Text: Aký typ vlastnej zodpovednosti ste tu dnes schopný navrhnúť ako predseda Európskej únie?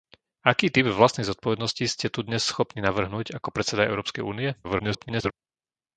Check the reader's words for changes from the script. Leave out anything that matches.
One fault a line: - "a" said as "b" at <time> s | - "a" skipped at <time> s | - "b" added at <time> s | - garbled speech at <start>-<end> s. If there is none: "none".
- garbled speech at 4.6-5.3 s